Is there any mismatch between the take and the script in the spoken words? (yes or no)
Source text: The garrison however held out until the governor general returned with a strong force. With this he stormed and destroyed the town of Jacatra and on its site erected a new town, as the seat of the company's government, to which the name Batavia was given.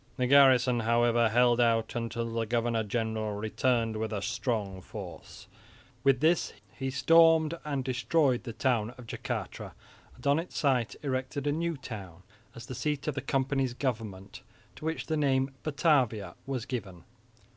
no